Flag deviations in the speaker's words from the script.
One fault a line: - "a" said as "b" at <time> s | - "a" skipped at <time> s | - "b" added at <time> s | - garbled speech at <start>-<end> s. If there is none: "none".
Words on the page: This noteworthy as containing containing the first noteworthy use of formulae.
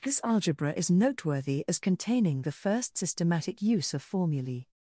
- "algebra is" added at 0.2 s
- "containing" skipped at 2.4 s
- "noteworthy" said as "systematic" at 3.0 s